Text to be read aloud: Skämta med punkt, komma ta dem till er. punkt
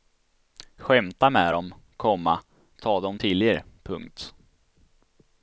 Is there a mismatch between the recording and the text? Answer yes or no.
yes